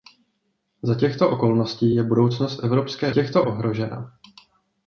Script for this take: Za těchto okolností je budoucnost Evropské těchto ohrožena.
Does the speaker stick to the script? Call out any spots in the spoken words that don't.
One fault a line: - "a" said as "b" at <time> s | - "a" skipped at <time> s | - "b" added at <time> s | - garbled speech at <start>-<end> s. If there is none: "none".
none